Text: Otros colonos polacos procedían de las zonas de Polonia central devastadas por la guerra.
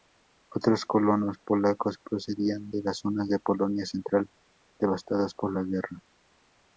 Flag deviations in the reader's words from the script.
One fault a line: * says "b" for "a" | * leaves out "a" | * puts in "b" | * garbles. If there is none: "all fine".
all fine